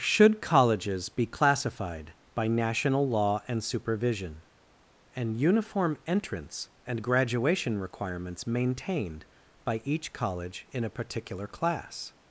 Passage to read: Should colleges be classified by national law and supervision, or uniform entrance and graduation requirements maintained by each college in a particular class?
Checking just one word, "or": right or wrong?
wrong